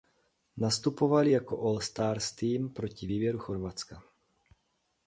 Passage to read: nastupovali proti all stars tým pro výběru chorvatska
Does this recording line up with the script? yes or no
no